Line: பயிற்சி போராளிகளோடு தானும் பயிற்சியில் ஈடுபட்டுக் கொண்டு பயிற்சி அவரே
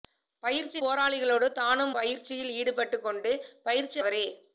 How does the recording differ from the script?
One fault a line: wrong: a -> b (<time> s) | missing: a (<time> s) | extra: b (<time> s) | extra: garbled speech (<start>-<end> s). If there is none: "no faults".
no faults